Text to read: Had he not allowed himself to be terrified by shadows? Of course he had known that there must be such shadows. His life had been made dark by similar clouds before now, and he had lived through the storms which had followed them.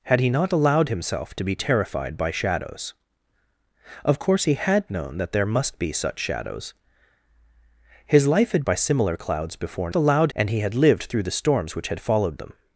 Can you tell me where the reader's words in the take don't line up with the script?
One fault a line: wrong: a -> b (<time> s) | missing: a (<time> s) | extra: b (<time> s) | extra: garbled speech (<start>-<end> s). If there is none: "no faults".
missing: been made dark (8.6 s)
wrong: now -> allowed (9.9 s)